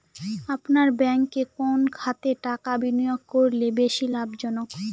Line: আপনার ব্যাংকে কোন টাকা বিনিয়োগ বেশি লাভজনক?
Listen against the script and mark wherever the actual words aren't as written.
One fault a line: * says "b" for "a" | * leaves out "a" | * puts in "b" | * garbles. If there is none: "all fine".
* puts in "খাতে"
* puts in "করলে"